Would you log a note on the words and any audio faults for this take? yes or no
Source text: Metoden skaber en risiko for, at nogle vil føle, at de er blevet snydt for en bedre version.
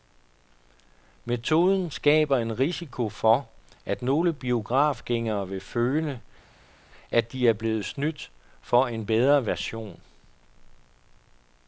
yes